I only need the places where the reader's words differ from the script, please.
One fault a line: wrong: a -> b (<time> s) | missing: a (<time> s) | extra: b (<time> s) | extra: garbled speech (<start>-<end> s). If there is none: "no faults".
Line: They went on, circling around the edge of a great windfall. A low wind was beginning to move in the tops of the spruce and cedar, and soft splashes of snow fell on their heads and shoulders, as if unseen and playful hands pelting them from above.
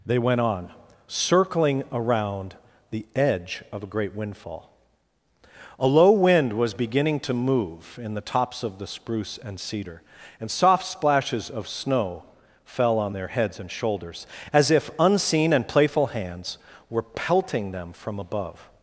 extra: were (16.9 s)